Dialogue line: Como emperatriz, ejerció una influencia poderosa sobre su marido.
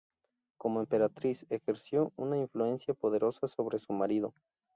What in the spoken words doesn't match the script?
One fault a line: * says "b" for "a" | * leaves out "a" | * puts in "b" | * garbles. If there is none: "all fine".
all fine